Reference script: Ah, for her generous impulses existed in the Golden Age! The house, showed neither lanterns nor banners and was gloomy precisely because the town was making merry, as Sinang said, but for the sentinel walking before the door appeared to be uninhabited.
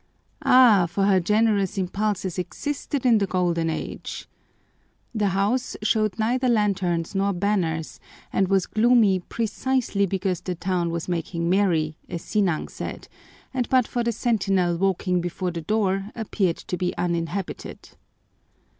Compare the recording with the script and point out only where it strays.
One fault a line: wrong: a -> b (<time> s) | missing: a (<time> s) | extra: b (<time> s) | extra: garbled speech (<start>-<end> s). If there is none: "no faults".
extra: and (13.5 s)